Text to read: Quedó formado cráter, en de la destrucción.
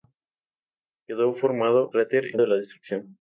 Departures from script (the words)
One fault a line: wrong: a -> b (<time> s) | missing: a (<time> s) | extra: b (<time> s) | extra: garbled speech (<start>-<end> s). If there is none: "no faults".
no faults